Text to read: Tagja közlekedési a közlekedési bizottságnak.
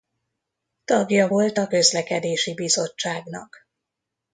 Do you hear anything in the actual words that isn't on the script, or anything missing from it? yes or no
yes